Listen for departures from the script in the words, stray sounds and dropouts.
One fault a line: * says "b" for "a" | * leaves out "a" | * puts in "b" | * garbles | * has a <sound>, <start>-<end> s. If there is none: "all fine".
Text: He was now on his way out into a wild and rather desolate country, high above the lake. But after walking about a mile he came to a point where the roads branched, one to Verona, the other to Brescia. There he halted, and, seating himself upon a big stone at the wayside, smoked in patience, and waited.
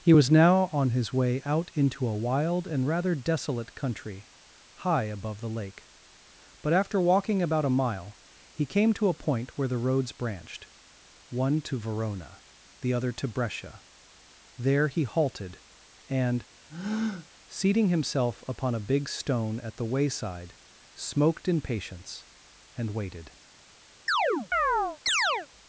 * has a breath, 16.7-17.3 s
* has a chirp, 24.1-25.5 s